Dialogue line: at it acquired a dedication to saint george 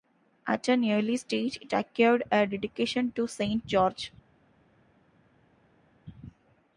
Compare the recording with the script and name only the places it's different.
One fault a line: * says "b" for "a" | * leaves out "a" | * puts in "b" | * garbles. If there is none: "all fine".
* puts in "an early stage"